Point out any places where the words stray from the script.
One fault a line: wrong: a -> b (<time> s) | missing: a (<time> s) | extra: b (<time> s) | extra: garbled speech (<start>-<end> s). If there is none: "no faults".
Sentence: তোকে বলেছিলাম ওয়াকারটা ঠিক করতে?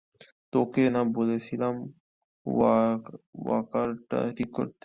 extra: না (0.9 s)